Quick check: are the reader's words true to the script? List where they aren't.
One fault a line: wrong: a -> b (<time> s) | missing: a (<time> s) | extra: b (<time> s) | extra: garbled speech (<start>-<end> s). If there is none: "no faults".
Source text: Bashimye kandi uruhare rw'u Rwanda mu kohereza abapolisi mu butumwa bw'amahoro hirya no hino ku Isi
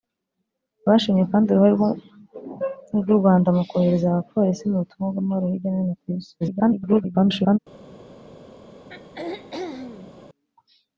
extra: garbled speech (6.4-7.6 s)